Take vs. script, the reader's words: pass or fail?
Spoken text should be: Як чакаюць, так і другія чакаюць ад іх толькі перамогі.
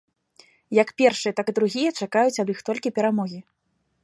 fail